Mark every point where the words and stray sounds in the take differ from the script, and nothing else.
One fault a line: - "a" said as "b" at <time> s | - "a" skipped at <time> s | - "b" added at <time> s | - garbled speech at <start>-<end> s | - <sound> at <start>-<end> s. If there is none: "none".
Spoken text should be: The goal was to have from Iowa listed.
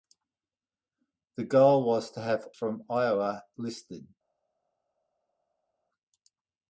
none